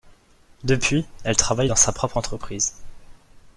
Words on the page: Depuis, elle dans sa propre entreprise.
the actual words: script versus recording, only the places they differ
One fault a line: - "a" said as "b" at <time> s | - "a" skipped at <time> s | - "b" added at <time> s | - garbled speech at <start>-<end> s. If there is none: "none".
- "travaille" added at 1.4 s